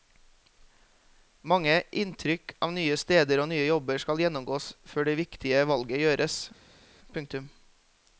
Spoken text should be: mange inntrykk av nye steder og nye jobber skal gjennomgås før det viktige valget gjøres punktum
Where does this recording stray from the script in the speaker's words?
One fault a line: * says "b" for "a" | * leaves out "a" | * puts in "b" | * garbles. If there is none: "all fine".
all fine